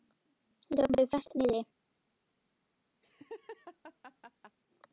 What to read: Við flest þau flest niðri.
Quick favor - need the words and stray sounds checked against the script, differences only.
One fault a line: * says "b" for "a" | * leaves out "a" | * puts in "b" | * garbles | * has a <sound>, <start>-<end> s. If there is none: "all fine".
* says "tókum" for "flest"
* has a laugh, 3.0-4.6 s